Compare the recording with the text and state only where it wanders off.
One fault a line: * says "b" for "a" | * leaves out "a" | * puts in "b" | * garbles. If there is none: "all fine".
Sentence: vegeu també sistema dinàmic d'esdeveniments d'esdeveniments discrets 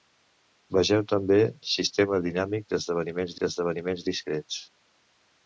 all fine